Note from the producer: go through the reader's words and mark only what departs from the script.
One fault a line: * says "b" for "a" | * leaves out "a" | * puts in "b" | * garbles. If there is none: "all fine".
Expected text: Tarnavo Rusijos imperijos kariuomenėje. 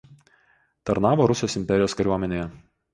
all fine